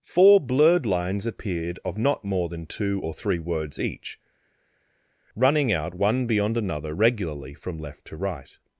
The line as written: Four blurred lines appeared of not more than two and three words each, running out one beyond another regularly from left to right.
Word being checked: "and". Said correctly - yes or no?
no